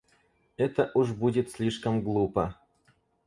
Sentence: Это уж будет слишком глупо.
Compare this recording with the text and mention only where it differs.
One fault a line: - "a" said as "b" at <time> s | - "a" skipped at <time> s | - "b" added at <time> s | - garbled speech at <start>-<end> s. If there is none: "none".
none